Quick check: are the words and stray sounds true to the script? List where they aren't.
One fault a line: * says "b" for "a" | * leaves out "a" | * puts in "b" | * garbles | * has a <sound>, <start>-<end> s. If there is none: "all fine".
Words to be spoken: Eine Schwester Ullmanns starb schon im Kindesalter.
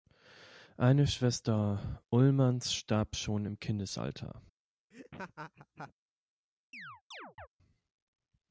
* has a laugh, 4.9-5.9 s
* has a chirp, 6.7-7.5 s